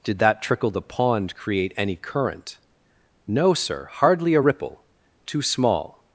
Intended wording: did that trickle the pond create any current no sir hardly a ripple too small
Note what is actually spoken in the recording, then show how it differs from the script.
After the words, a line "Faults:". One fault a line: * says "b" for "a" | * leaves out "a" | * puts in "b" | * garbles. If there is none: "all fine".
did that trickle the pond create any current no sir hardly a ripple too small
Faults:
all fine